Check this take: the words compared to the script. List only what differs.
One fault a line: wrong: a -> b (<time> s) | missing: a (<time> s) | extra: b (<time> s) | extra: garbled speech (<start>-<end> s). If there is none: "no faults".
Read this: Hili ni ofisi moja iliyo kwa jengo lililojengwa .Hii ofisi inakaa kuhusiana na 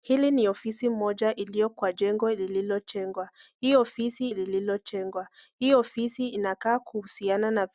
extra: lililojengwa Hii ofisi (4.3 s)